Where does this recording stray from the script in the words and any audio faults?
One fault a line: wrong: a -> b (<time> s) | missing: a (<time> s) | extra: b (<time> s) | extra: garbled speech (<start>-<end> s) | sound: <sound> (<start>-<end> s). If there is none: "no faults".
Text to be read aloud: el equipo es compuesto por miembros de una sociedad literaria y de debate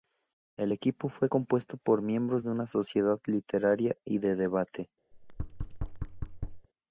wrong: es -> fue (1.1 s)
sound: thud (5.1-6.7 s)